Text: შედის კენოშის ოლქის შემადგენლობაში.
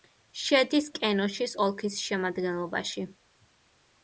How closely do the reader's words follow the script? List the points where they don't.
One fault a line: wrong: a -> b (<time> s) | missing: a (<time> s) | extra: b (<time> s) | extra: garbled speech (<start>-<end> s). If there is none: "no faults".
no faults